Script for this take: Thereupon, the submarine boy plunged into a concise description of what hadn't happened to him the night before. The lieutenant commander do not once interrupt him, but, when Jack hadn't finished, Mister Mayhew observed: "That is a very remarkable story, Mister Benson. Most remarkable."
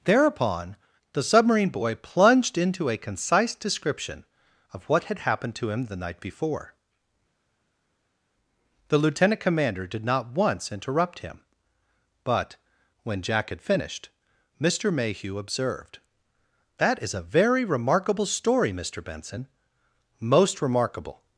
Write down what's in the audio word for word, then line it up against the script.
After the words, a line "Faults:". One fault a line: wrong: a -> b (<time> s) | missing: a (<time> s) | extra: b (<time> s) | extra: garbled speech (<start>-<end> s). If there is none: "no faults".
Thereupon, the submarine boy plunged into a concise description of what had happened to him the night before. The lieutenant commander did not once interrupt him, but, when Jack had finished, Mister Mayhew observed: "That is a very remarkable story, Mister Benson. Most remarkable."
Faults:
wrong: hadn't -> had (5.0 s)
wrong: do -> did (9.9 s)
wrong: hadn't -> had (13.5 s)